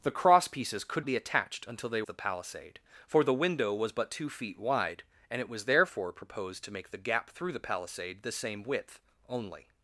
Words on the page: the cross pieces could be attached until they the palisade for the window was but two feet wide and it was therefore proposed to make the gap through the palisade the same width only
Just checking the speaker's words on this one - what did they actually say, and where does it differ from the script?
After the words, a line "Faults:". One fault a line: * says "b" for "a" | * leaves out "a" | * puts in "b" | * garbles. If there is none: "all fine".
the cross pieces could be attached until they the palisade for the window was but two feet wide and it was therefore proposed to make the gap through the palisade the same width only
Faults:
all fine